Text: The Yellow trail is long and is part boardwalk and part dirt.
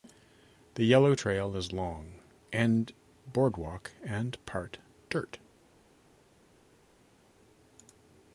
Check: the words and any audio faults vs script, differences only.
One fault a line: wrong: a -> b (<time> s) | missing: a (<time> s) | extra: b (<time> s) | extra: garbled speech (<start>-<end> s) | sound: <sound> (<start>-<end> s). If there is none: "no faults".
missing: is part (2.9 s)